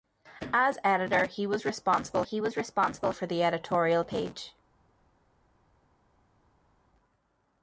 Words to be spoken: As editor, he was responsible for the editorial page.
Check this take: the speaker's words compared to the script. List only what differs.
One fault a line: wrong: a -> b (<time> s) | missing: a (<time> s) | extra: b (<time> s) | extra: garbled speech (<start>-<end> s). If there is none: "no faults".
extra: he was responsible (2.2 s)